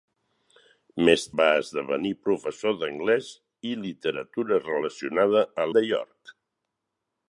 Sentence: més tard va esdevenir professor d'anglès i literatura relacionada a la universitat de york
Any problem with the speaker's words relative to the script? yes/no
yes